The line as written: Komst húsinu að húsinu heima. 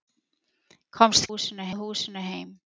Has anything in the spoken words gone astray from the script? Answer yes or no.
no